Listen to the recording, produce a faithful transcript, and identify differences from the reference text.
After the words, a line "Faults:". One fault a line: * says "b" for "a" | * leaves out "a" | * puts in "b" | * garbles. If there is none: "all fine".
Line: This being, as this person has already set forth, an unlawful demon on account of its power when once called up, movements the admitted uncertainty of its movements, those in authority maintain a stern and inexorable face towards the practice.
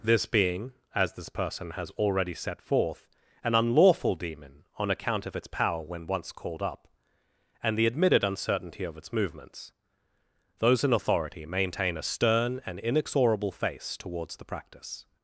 This being, as this person has already set forth, an unlawful demon on account of its power when once called up, and the admitted uncertainty of its movements, those in authority maintain a stern and inexorable face towards the practice.
Faults:
* says "and" for "movements"